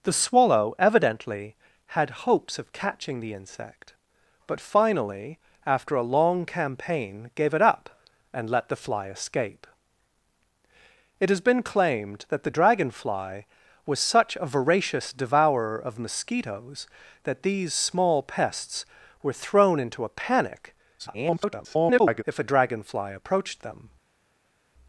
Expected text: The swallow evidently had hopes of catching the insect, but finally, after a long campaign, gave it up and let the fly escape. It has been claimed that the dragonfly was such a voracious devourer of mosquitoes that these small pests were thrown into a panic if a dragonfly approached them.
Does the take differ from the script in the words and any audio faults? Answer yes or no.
yes